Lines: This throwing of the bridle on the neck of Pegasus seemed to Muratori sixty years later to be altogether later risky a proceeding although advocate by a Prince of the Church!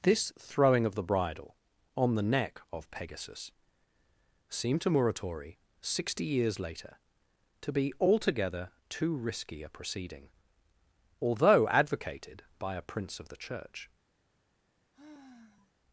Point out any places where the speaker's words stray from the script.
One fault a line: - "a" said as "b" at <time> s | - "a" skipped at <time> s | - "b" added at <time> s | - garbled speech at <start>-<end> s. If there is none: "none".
- "later" said as "too" at 8.9 s
- "advocate" said as "advocated" at 11.7 s